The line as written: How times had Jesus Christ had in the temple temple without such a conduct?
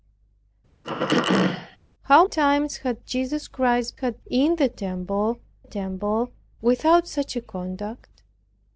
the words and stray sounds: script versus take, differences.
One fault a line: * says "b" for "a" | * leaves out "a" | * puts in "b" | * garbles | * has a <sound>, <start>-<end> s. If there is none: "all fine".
* has a throat clearing, 0.8-1.8 s